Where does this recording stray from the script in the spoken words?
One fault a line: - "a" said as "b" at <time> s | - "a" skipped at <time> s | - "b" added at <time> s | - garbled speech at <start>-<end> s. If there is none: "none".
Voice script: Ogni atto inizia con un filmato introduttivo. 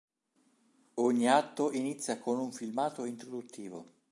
none